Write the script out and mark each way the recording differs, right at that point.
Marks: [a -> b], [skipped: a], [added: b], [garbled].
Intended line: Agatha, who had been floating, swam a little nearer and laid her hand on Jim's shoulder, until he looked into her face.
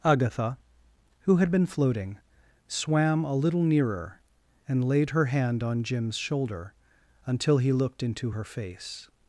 Agatha, who had been floating, swam a little nearer and laid her hand on Jim's shoulder, until he looked into her face.